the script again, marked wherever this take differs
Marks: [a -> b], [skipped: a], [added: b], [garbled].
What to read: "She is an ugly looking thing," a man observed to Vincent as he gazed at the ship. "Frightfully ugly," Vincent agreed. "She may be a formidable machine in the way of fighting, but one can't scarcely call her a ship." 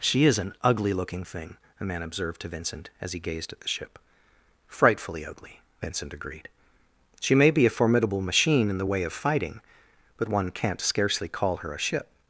"She is an ugly looking thing," a man observed to Vincent as he gazed at the ship. "Frightfully ugly," Vincent agreed. "She may be a formidable machine in the way of fighting, but one can't scarcely call her a ship."